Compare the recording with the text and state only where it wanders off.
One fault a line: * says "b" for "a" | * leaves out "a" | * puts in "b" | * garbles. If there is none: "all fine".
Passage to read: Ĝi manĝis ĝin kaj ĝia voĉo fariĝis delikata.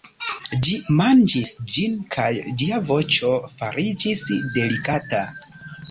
all fine